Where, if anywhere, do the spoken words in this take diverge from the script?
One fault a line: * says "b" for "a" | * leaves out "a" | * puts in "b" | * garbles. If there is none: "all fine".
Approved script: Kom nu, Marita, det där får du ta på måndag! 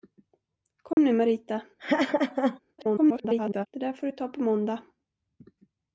* garbles